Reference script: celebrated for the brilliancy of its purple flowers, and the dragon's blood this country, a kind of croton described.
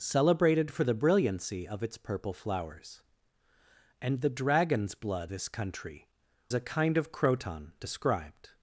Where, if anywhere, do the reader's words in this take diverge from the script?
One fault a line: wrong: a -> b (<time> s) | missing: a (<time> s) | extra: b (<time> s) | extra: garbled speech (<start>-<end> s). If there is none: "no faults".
no faults